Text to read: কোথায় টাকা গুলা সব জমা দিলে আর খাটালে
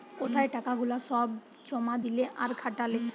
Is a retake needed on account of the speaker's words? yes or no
no